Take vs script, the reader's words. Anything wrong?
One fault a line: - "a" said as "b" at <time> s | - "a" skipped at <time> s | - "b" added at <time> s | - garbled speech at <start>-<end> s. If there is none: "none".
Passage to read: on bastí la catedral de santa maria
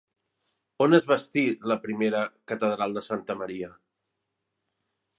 - "es" added at 0.9 s
- "primera" added at 1.9 s